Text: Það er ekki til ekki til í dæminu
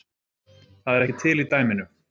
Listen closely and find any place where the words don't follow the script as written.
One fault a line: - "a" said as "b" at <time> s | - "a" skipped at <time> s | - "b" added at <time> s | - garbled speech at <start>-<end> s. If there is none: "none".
- "ekki til" skipped at 1.4 s